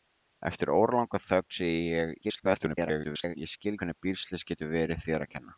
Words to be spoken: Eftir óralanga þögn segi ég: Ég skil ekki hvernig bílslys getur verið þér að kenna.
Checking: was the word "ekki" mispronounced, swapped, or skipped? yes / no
yes